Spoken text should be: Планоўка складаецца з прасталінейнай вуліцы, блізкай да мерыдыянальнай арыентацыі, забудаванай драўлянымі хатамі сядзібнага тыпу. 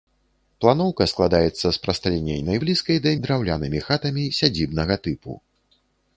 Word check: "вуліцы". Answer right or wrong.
wrong